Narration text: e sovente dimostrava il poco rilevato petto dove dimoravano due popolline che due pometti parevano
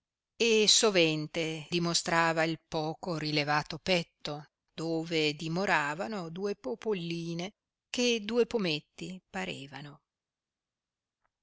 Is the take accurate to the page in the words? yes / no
yes